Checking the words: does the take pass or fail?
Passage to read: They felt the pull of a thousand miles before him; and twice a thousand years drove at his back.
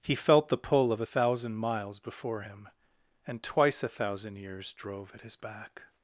fail